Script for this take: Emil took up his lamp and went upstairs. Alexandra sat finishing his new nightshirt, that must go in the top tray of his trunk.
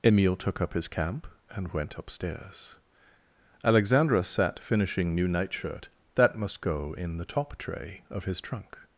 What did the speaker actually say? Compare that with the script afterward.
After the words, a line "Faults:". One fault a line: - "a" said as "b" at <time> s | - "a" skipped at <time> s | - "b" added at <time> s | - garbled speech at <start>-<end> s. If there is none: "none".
Emil took up his camp and went upstairs. Alexandra sat finishing new nightshirt, that must go in the top tray of his trunk.
Faults:
- "lamp" said as "camp" at 0.9 s
- "his" skipped at 5.1 s